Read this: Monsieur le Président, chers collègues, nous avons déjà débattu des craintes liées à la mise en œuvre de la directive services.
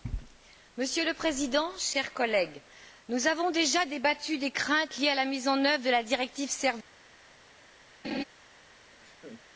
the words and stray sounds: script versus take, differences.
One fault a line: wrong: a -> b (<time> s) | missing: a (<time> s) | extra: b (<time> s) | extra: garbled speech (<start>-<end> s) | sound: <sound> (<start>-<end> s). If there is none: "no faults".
sound: laugh (8.0-8.2 s)
sound: laugh (9.0-9.4 s)